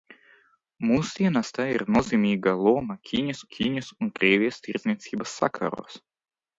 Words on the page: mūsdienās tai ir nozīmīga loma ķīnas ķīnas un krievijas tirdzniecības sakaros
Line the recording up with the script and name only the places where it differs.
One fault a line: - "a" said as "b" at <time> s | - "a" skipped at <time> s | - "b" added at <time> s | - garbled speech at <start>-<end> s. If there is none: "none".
none